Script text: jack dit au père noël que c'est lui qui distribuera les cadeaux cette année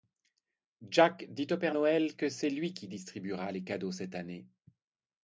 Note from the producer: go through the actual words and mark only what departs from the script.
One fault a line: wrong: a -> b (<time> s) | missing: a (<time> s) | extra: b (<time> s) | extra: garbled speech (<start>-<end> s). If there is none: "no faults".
no faults